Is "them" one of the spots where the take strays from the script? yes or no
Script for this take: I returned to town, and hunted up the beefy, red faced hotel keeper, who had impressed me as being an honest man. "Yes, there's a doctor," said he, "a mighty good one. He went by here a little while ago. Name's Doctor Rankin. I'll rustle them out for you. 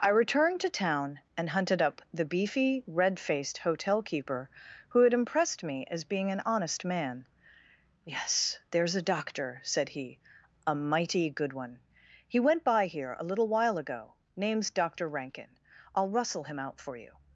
yes